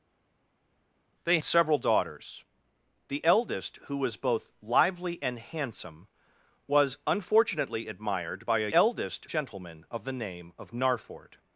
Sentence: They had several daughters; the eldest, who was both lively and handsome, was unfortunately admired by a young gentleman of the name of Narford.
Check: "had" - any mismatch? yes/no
yes